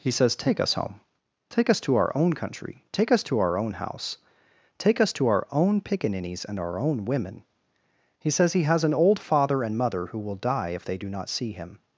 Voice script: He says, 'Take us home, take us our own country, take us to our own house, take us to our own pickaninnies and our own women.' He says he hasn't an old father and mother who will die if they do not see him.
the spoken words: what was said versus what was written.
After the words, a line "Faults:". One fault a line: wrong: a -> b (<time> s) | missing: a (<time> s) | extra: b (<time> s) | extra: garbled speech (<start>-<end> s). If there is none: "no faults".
He says, 'Take us home, take us to our own country, take us to our own house, take us to our own pickaninnies and our own women.' He says he has an old father and mother who will die if they do not see him.
Faults:
extra: to (1.8 s)
wrong: hasn't -> has (8.6 s)